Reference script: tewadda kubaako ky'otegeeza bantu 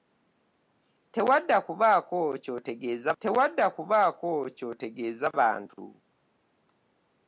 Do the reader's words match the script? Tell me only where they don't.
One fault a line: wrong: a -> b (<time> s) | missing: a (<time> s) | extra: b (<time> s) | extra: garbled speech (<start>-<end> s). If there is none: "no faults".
extra: tewadda kubaako ky'otegeeza (3.2 s)